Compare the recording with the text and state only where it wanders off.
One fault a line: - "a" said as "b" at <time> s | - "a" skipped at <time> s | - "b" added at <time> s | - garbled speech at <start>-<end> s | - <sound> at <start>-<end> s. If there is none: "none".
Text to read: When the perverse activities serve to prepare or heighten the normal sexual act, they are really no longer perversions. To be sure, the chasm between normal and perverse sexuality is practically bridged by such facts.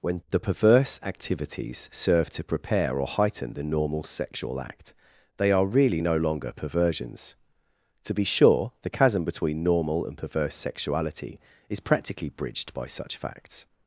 none